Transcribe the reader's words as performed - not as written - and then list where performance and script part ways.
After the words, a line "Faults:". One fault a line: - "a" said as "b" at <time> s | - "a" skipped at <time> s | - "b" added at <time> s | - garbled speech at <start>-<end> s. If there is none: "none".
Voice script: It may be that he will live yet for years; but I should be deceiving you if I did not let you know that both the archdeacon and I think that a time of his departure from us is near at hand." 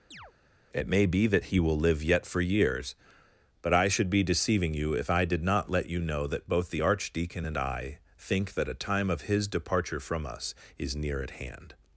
It may be that he will live yet for years; but I should be deceiving you if I did not let you know that both the archdeacon and I think that a time of his departure from us is near at hand."
Faults:
none